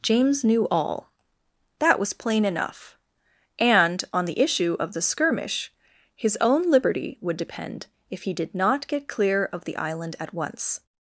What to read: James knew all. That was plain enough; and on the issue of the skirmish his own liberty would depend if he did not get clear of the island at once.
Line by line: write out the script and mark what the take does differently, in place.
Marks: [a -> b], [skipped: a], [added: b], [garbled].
James knew all. That was plain enough; and on the issue of the skirmish his own liberty would depend if he did not get clear of the island at once.